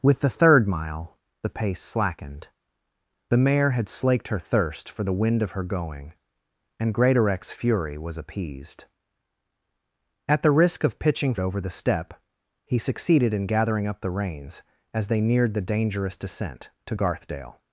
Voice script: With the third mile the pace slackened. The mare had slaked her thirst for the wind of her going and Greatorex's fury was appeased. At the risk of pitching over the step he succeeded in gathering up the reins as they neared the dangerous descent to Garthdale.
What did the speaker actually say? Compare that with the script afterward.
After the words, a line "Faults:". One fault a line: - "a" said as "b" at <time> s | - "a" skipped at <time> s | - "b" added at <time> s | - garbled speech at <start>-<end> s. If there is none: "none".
With the third mile the pace slackened. The mare had slaked her thirst for the wind of her going and Greatorex's fury was appeased. At the risk of pitching over the step he succeeded in gathering up the reins as they neared the dangerous descent to Garthdale.
Faults:
none